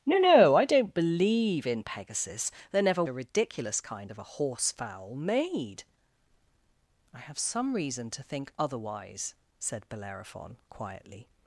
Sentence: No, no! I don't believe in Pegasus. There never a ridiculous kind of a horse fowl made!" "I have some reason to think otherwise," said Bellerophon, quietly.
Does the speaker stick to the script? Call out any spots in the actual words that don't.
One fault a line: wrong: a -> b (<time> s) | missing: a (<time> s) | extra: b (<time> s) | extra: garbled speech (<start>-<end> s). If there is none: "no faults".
no faults